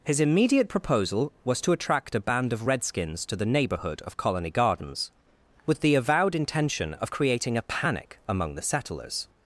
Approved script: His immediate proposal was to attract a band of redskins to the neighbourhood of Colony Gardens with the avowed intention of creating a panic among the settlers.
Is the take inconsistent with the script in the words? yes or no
no